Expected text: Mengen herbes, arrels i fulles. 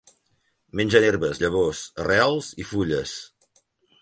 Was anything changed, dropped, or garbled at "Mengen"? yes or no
no